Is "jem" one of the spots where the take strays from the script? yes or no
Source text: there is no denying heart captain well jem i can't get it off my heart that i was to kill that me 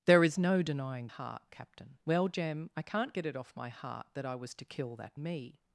no